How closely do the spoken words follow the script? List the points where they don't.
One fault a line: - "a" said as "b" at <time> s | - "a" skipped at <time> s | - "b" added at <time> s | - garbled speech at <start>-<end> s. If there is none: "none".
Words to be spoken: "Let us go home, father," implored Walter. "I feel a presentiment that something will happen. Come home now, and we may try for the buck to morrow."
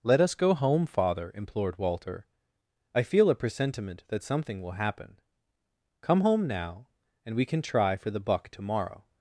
- "may" said as "can" at 7.5 s